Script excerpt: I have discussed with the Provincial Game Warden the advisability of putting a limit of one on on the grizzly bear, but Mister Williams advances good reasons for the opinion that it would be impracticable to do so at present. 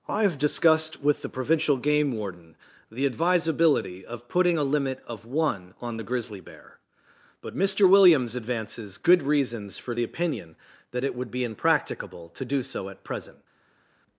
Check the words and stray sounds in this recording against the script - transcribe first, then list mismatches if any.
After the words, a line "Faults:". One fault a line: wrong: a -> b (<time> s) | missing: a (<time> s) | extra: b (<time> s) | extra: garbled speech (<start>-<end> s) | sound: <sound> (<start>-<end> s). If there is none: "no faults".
I have discussed with the Provincial Game Warden the advisability of putting a limit of one on the grizzly bear, but Mister Williams advances good reasons for the opinion that it would be impracticable to do so at present.
Faults:
missing: on (6.0 s)